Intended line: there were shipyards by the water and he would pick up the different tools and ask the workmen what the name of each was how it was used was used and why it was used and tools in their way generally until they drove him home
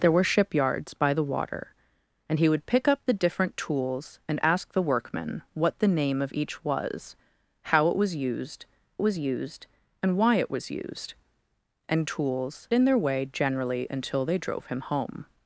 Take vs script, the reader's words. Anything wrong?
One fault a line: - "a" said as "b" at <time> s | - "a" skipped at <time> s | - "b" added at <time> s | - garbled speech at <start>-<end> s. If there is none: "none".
none